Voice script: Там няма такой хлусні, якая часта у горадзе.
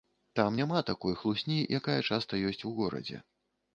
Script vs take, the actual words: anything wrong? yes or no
yes